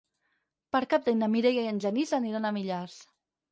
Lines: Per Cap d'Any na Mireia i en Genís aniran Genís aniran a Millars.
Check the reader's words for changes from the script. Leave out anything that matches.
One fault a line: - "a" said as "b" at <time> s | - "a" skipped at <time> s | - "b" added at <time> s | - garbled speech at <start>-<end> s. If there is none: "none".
- "Genís aniran" skipped at 2.5 s